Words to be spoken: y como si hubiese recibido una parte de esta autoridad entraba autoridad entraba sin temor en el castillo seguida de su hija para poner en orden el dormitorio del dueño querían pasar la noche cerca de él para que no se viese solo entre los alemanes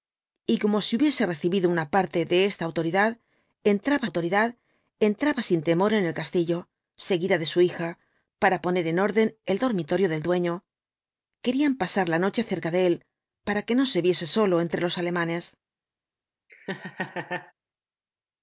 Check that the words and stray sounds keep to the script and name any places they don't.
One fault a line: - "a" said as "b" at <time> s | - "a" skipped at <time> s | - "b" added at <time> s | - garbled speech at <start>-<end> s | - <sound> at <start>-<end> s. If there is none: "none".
- laugh at 16.5-17.5 s